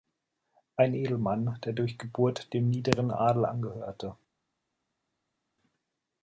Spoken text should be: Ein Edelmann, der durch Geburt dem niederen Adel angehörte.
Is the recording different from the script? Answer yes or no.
no